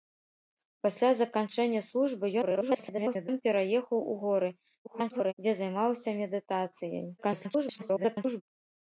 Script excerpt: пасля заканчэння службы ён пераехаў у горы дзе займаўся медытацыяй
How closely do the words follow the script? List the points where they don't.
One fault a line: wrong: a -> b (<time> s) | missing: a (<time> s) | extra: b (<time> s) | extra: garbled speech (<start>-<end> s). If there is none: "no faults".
extra: garbled speech (2.4-3.3 s)
extra: garbled speech (4.8-5.3 s)
extra: garbled speech (7.2-8.4 s)